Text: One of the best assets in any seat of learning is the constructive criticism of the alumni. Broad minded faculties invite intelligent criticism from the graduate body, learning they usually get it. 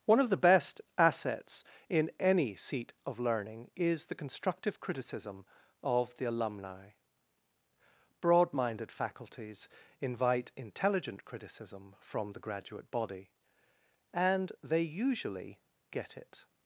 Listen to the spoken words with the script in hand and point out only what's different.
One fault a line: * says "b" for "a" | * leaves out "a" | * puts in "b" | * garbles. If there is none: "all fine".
* says "and" for "learning"